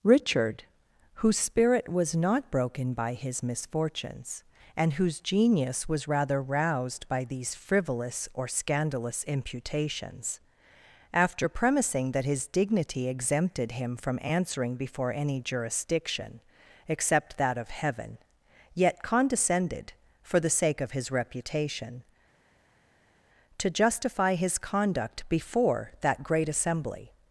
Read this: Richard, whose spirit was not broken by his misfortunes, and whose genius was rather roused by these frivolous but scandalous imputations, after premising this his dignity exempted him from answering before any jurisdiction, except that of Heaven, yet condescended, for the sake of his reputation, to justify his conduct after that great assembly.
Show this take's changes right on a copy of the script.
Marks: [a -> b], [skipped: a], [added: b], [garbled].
Richard, whose spirit was not broken by his misfortunes, and whose genius was rather roused by these frivolous [but -> or] scandalous imputations, after premising [this -> that] his dignity exempted him from answering before any jurisdiction, except that of Heaven, yet condescended, for the sake of his reputation, to justify his conduct [after -> before] that great assembly.